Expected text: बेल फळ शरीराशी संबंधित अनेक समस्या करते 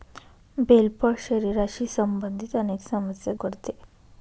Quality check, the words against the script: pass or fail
pass